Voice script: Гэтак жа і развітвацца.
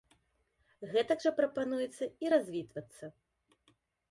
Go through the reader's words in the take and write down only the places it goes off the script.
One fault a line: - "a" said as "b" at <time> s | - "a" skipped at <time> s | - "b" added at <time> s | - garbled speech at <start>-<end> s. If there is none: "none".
- "прапануецца" added at 1.4 s